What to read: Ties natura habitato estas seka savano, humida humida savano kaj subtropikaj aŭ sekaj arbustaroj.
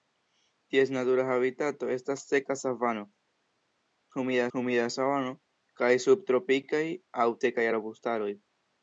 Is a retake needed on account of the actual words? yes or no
no